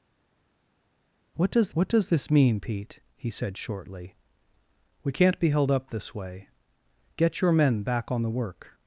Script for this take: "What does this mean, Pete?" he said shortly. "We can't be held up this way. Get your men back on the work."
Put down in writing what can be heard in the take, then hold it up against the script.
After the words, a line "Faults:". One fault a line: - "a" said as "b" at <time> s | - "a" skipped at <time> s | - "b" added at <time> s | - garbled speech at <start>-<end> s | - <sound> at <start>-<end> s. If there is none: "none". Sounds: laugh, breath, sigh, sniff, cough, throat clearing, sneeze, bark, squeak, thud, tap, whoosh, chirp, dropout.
"What does what does this mean, Pete?" he said shortly. "We can't be held up this way. Get your men back on the work."
Faults:
- "what does" added at 1.7 s